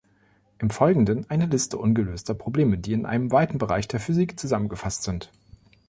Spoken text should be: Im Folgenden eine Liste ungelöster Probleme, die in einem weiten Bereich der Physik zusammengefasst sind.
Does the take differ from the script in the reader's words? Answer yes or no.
no